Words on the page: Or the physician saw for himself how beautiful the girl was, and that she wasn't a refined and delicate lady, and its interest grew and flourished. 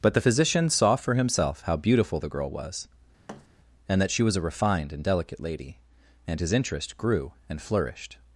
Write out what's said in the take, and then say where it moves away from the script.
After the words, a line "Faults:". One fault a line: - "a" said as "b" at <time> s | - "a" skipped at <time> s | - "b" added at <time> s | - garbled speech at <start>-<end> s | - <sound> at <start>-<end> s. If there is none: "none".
But the physician saw for himself how beautiful the girl was, and that she was a refined and delicate lady, and his interest grew and flourished.
Faults:
- "Or" said as "But" at 0.0 s
- thud at 3.3-3.5 s
- "wasn't" said as "was" at 4.2 s
- "its" said as "his" at 6.4 s